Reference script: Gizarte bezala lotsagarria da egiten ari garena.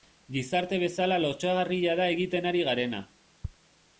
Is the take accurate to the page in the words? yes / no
yes